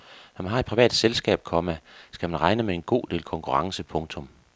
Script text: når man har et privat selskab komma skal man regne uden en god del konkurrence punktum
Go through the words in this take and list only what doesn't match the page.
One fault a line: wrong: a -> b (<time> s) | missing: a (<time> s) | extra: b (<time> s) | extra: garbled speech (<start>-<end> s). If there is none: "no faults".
wrong: uden -> med (2.6 s)